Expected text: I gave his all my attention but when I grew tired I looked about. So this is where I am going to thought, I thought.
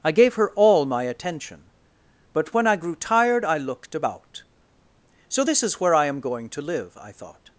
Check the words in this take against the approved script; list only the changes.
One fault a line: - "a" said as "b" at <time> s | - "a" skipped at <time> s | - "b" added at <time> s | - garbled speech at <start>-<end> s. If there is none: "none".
- "his" said as "her" at 0.3 s
- "thought" said as "live" at 6.6 s